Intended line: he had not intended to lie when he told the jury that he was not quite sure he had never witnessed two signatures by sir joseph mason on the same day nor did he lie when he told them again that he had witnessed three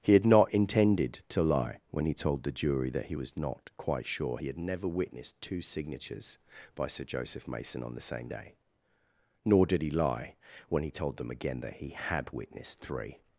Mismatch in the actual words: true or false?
false